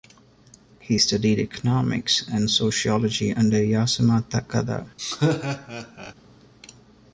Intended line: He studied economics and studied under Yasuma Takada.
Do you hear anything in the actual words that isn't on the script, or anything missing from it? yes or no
yes